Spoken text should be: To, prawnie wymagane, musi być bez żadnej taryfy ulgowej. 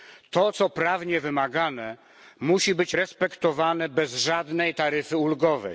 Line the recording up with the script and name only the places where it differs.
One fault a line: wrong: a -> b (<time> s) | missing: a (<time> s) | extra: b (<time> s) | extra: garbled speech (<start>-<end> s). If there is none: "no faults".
extra: co (0.5 s)
extra: respektowane (2.9 s)